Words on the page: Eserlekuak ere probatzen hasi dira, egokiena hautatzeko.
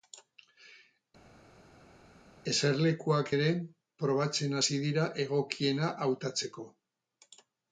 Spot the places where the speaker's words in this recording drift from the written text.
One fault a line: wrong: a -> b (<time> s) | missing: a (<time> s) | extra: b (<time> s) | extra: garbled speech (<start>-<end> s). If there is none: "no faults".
no faults